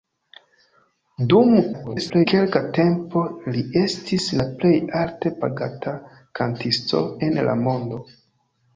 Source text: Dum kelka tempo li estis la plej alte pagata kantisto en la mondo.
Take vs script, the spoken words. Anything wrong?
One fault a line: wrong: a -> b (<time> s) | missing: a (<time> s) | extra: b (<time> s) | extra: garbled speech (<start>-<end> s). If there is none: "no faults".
extra: garbled speech (1.7-2.3 s)